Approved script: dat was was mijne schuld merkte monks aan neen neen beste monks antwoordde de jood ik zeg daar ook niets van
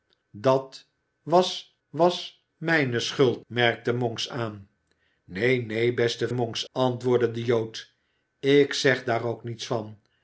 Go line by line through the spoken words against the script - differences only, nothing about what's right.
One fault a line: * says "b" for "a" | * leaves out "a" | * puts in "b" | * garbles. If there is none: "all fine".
all fine